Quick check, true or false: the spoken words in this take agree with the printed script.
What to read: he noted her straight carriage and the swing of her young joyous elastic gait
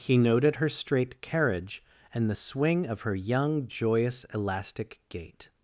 true